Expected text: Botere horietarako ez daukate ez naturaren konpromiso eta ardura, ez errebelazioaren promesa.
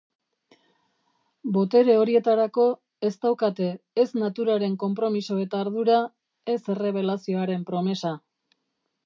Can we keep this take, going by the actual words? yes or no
yes